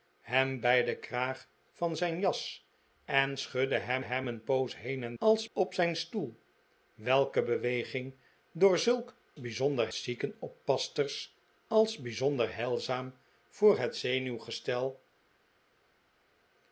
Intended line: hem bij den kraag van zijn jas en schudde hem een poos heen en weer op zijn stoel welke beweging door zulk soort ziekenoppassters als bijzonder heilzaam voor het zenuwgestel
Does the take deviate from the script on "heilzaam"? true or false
false